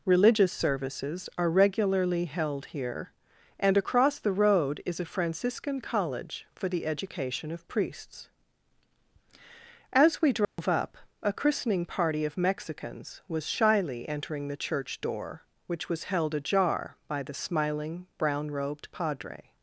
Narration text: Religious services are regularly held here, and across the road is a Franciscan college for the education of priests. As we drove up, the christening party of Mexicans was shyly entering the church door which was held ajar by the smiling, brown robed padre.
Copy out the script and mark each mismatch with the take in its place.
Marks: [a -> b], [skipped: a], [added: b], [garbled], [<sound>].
Religious services are regularly held here, and across the road is a Franciscan college for the education of priests. As we drove [dropout] up, [the -> a] christening party of Mexicans was shyly entering the church door which was held ajar by the smiling, brown robed padre.